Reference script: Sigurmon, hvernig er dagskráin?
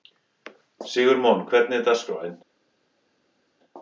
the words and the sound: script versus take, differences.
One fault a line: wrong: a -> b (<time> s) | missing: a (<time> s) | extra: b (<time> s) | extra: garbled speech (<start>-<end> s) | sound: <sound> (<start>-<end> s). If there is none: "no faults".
no faults